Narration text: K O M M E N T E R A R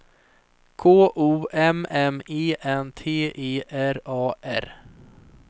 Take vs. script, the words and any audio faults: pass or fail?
pass